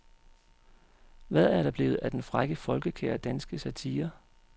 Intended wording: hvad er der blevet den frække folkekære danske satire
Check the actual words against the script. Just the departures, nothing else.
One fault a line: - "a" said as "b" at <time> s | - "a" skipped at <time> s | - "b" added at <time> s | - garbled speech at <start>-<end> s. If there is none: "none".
- "af" added at 1.9 s